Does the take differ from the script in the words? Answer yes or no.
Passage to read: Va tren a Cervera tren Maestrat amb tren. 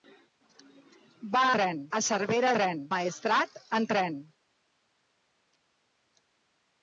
no